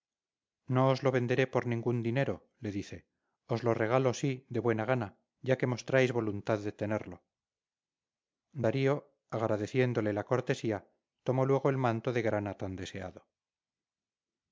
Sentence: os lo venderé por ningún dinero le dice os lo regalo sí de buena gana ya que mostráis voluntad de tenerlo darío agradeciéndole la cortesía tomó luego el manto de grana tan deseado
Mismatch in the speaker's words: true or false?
false